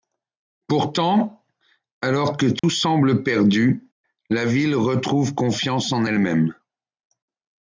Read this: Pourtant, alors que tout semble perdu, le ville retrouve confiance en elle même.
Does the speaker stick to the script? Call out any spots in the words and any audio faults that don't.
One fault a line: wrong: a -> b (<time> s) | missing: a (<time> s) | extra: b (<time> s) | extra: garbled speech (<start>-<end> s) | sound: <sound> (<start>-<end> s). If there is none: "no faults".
sound: dropout (2.6-2.6 s)
wrong: le -> la (4.3 s)